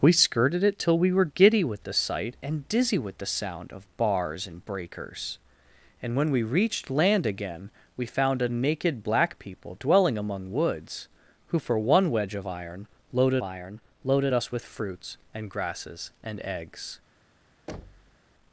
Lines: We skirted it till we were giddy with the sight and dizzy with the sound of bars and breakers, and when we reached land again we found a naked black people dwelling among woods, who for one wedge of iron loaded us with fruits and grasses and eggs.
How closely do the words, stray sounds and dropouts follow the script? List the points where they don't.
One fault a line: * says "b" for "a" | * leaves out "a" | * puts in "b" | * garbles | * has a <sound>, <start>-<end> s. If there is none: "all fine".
* puts in "iron loaded"
* has a thud, 17.7-18.2 s